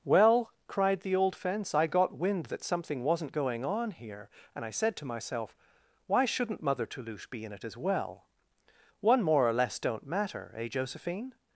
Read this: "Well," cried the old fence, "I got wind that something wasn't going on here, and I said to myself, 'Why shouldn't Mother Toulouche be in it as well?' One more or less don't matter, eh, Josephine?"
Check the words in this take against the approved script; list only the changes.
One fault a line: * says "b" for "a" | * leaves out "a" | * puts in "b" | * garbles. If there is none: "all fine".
all fine